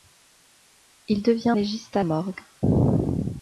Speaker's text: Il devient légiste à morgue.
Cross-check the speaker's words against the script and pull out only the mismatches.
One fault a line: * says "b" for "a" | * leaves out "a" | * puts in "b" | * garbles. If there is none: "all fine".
all fine